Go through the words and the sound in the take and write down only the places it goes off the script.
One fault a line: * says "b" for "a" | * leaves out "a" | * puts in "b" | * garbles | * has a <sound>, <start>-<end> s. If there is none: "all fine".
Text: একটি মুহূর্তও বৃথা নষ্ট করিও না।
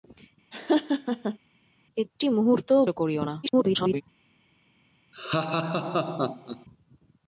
* has a laugh, 0.5-1.4 s
* leaves out "বৃথা নষ্ট"
* garbles
* has a laugh, 5.1-6.7 s